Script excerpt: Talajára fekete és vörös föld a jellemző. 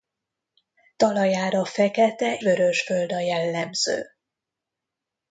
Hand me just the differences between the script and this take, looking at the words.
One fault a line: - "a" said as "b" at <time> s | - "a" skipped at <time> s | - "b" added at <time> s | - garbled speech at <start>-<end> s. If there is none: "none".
- "és" skipped at 2.4 s